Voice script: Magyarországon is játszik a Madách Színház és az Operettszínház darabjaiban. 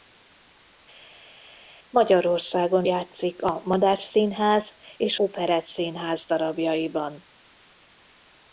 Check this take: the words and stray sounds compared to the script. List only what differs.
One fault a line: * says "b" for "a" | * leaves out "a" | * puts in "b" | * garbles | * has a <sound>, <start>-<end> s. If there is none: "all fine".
* leaves out "is"
* leaves out "az"